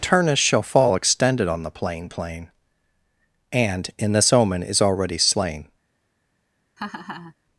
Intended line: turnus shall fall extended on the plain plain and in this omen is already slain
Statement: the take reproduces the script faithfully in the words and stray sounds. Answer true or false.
false